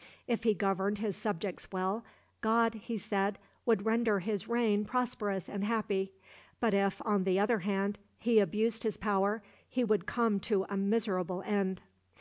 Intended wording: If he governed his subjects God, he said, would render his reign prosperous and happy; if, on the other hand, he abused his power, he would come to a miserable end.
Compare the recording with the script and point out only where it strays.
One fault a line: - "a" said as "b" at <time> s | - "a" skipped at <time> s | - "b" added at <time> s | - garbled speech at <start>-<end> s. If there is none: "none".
- "well" added at 1.7 s
- "but" added at 6.6 s